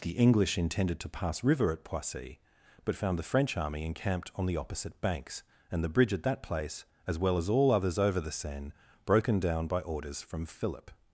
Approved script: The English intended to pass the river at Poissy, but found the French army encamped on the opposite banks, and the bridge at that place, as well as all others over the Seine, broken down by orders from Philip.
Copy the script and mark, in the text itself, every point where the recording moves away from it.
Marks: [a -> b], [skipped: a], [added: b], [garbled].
The English intended to pass [skipped: the] river at Poissy, but found the French army encamped on the opposite banks, and the bridge at that place, as well as all others over the Seine, broken down by orders from Philip.